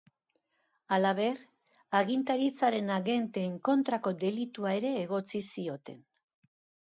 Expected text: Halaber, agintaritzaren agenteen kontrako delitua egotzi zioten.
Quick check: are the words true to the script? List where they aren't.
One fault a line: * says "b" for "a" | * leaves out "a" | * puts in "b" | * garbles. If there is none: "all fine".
* puts in "ere"